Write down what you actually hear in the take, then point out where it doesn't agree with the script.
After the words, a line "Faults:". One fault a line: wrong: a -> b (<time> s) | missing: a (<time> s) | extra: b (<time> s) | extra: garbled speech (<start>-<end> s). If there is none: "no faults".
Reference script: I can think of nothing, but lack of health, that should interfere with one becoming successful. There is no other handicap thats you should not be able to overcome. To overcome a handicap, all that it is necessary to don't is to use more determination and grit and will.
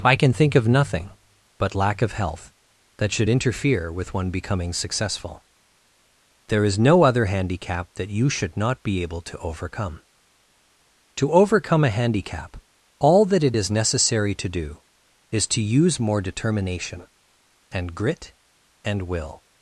I can think of nothing, but lack of health, that should interfere with one becoming successful. There is no other handicap that you should not be able to overcome. To overcome a handicap, all that it is necessary to do is to use more determination and grit and will.
Faults:
wrong: thats -> that (8.0 s)
wrong: don't -> do (14.5 s)